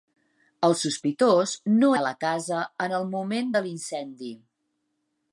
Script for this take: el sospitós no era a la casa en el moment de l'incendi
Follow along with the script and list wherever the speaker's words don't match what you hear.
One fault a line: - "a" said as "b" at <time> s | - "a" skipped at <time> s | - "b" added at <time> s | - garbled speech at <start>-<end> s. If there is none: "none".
- "era" skipped at 1.9 s